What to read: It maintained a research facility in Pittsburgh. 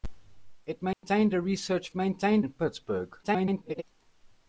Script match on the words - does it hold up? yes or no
no